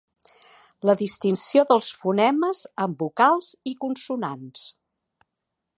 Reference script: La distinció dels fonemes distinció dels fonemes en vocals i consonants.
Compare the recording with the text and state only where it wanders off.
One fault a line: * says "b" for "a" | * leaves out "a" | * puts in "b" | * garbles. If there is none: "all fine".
* leaves out "distinció dels fonemes"